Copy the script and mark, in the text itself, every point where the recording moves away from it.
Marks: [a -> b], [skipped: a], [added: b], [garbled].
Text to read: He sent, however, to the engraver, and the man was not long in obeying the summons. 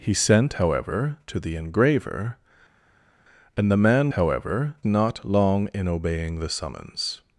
He sent, however, to the engraver, and the man [was -> however] not long in obeying the summons.